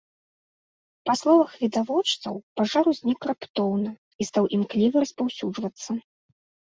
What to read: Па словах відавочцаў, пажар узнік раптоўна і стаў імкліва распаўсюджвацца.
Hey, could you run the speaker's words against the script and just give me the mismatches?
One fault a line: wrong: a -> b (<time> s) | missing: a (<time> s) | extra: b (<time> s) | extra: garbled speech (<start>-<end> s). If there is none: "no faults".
no faults